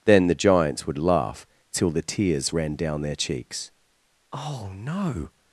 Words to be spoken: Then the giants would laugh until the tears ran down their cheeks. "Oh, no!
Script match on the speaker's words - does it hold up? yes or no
no